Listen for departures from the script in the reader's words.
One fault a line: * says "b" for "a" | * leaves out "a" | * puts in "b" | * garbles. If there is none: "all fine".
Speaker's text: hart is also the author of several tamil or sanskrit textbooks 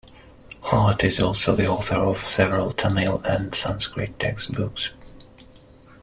* says "and" for "or"